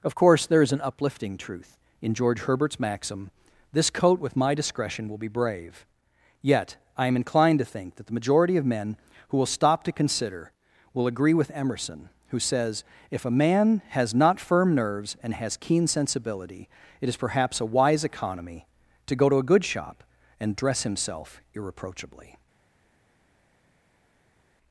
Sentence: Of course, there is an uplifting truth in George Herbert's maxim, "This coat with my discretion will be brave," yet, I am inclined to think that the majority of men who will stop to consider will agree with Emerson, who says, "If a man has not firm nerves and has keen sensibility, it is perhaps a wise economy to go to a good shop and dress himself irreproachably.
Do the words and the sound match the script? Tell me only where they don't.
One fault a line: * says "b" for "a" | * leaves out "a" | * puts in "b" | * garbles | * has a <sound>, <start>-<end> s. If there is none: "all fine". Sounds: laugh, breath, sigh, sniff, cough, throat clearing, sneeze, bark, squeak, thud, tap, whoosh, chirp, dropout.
all fine